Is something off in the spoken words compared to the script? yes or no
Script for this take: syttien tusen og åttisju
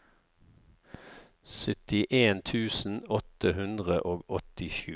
yes